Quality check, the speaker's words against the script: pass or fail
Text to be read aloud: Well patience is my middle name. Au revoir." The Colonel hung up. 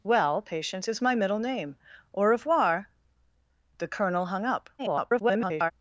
fail